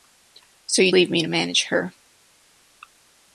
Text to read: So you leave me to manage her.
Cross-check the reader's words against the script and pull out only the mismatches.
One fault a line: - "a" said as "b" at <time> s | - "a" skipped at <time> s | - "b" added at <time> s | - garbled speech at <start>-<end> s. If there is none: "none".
none